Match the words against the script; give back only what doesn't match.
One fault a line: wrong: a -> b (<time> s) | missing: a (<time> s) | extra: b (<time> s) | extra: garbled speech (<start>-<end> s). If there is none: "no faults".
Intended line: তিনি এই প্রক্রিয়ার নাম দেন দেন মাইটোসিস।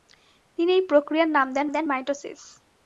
no faults